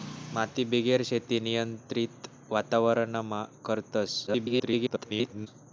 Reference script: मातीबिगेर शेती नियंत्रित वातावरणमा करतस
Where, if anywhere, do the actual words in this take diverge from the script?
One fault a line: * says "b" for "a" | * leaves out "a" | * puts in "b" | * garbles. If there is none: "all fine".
* garbles